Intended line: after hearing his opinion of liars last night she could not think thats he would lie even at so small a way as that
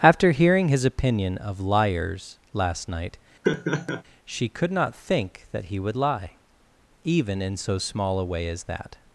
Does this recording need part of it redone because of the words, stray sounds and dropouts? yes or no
yes